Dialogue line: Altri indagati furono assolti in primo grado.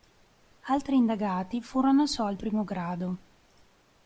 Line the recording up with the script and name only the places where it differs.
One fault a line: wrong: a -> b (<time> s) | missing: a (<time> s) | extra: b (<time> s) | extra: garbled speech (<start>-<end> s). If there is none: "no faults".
missing: in (2.4 s)